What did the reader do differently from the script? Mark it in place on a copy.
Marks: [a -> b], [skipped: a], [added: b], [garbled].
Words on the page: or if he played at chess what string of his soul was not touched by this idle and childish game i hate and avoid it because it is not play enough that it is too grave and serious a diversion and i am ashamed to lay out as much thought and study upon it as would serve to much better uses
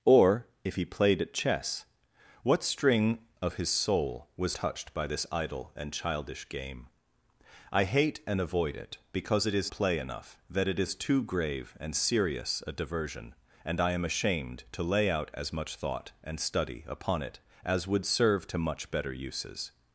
or if he played at chess what string of his soul was [skipped: not] touched by this idle and childish game i hate and avoid it because it is [skipped: not] play enough that it is too grave and serious a diversion and i am ashamed to lay out as much thought and study upon it as would serve to much better uses